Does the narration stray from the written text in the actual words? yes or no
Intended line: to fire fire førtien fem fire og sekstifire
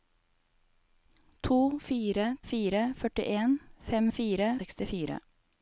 no